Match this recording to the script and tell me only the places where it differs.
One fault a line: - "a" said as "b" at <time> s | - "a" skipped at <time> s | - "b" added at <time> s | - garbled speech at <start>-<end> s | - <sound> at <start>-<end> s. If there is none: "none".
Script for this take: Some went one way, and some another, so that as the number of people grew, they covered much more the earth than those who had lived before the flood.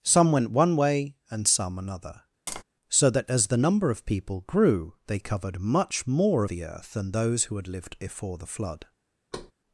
- tap at 2.5-2.6 s
- thud at 9.3-9.5 s